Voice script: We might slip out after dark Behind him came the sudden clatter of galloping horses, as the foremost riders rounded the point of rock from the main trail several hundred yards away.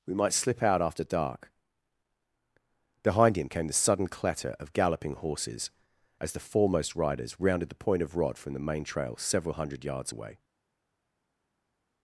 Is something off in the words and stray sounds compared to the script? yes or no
yes